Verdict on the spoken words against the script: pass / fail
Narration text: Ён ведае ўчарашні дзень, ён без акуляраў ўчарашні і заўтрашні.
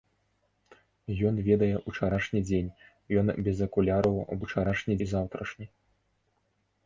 pass